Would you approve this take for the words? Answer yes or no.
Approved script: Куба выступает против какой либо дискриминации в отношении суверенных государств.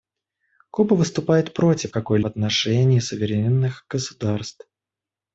no